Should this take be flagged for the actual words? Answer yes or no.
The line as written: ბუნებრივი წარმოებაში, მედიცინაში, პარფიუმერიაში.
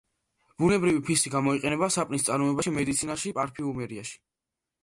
yes